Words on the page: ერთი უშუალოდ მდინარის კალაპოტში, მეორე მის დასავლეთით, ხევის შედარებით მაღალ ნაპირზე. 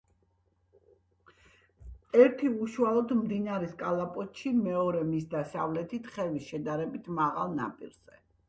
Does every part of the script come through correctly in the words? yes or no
yes